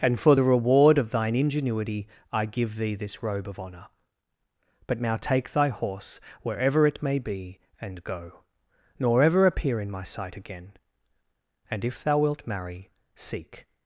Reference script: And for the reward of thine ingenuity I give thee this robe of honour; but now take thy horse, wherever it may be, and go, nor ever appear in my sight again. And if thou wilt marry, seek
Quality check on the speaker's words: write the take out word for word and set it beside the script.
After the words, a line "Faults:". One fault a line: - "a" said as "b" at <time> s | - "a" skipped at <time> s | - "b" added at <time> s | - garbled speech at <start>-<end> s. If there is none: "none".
And for the reward of thine ingenuity I give thee this robe of honour; but now take thy horse, wherever it may be, and go, nor ever appear in my sight again. And if thou wilt marry, seek
Faults:
none